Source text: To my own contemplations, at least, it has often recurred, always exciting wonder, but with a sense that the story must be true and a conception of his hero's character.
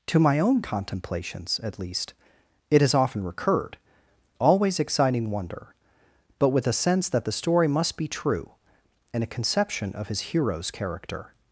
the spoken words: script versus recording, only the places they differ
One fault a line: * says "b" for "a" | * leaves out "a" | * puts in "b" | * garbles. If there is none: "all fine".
all fine